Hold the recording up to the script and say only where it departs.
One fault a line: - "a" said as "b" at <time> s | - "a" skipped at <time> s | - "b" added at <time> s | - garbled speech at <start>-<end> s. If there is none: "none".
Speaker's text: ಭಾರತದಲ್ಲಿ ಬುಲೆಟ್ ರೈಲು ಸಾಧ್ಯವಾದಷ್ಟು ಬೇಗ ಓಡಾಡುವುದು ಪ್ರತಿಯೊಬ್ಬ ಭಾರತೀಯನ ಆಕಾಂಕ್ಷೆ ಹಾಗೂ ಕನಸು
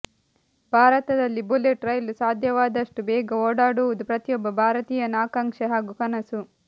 none